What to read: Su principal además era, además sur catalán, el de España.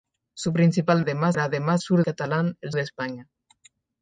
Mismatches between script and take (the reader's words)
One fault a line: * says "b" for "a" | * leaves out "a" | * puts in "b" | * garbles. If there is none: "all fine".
all fine